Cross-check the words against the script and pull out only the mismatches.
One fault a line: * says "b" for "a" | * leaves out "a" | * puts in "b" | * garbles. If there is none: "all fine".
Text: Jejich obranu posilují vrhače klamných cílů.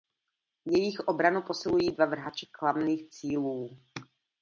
* puts in "dva"